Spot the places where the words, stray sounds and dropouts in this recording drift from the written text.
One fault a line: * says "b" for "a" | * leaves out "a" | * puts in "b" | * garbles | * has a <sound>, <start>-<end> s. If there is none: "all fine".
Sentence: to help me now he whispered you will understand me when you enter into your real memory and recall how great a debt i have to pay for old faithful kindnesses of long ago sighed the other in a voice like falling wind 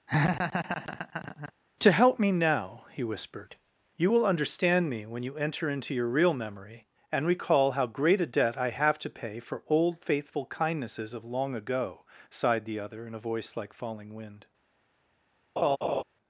* has a laugh, 0.1-1.5 s
* has a laugh, 15.6-16.0 s